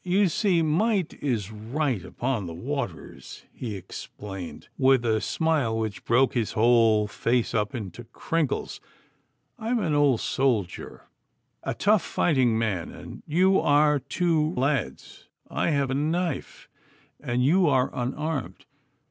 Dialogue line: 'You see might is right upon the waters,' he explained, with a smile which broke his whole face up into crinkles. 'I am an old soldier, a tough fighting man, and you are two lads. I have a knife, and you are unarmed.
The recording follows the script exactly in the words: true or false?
true